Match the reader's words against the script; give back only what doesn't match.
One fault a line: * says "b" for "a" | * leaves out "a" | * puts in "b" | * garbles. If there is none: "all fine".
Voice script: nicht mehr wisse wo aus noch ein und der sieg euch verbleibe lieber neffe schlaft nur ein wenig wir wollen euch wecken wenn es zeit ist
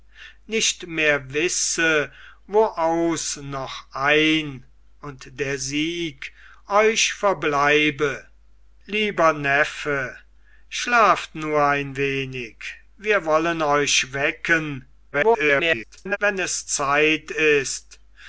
* garbles